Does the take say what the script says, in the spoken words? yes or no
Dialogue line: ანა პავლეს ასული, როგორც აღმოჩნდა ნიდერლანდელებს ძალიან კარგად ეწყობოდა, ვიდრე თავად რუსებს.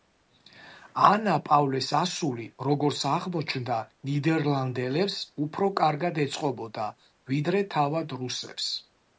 no